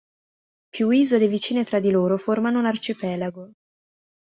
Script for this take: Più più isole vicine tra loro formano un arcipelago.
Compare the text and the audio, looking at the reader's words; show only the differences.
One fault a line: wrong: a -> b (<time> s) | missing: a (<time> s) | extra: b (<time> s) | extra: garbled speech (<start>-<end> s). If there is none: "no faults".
missing: più (0.9 s)
extra: di (1.8 s)